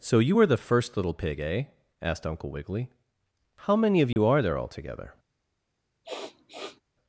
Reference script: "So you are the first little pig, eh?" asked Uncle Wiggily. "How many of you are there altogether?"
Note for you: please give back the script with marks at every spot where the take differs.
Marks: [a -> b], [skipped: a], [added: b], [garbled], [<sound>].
"So you [are -> were] the first little pig, eh?" asked Uncle Wiggily. "How many of you [dropout] are there altogether?" [sniff]